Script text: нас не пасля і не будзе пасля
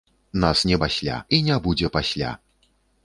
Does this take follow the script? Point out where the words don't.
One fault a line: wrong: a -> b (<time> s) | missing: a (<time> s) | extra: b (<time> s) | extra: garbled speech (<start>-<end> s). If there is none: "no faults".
no faults